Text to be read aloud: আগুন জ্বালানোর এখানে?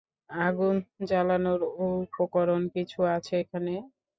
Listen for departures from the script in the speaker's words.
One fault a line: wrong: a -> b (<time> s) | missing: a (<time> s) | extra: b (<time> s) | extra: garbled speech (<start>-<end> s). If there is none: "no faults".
extra: উপকরণ কিছু আছে (1.9 s)